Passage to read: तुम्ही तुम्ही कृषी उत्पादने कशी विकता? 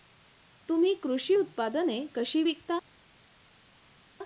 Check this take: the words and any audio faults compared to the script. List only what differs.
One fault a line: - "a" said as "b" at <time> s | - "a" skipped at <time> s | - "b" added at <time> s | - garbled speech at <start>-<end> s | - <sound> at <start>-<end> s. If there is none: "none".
- "तुम्ही" skipped at 0.9 s